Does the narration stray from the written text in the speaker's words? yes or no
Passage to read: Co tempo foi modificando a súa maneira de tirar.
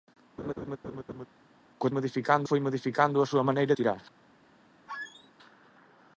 yes